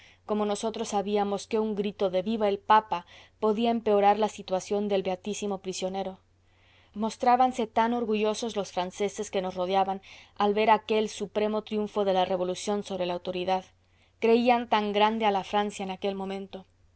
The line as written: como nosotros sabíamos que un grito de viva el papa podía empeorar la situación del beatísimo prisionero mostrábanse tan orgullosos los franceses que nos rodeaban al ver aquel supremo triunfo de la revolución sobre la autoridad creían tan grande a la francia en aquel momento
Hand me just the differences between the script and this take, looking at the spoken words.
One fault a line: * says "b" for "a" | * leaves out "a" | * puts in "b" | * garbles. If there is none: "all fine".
all fine